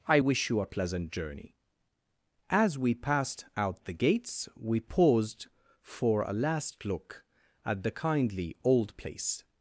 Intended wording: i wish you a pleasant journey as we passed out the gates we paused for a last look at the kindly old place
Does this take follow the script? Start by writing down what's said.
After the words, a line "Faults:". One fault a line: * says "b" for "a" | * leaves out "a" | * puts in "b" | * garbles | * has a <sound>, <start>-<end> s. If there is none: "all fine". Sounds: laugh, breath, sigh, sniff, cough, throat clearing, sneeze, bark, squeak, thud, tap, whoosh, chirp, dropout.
i wish you a pleasant journey as we passed out the gates we paused for a last look at the kindly old place
Faults:
all fine